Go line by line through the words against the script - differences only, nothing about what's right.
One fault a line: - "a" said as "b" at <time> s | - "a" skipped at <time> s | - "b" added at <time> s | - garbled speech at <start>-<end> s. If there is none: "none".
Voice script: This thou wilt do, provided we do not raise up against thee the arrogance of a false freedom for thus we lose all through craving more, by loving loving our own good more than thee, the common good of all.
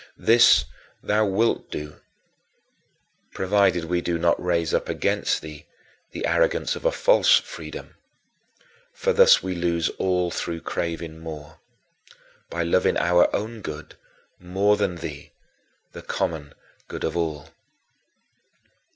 - "loving" skipped at 13.0 s